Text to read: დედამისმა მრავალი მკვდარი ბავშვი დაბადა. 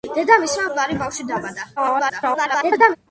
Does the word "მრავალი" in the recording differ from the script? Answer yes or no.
yes